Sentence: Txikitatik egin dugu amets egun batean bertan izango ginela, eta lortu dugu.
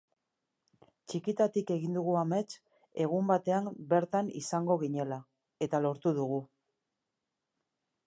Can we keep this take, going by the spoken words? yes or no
yes